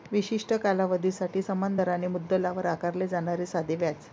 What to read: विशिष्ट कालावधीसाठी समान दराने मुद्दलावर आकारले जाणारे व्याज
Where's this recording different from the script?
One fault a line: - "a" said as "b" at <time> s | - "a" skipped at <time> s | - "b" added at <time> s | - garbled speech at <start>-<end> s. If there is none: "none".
- "साधे" added at 3.5 s